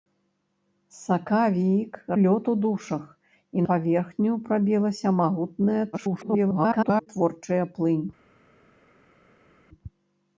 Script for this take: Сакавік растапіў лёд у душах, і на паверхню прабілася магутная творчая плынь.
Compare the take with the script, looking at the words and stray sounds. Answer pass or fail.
fail